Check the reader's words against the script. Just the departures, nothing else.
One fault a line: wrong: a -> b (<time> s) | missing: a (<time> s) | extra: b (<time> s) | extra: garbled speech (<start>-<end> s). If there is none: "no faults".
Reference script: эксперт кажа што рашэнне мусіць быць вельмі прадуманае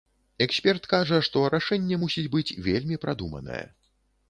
no faults